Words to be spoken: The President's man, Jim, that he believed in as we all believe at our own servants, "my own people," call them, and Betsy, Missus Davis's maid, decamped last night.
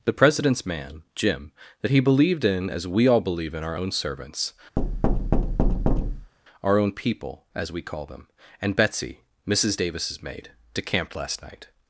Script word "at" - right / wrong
wrong